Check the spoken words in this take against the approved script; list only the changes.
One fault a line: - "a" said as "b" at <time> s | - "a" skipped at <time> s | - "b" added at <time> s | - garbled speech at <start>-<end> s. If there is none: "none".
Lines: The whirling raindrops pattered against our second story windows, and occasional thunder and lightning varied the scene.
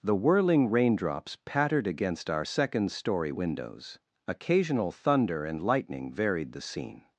- "and" skipped at 4.0 s